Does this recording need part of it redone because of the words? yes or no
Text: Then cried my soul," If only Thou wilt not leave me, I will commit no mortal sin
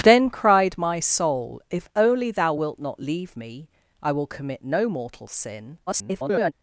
yes